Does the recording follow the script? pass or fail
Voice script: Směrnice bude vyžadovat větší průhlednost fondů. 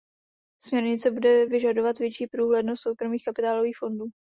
fail